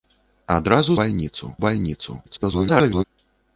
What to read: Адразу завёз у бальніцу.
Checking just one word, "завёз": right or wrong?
wrong